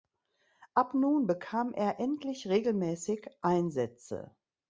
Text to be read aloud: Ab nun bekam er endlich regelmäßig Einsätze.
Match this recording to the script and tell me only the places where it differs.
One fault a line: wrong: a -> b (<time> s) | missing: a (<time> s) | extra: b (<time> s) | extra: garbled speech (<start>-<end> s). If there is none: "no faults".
no faults